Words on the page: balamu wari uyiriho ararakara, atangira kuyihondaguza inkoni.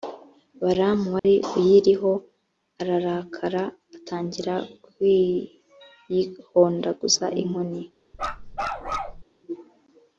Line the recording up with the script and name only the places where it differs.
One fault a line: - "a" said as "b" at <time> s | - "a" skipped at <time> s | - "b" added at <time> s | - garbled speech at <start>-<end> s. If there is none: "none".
none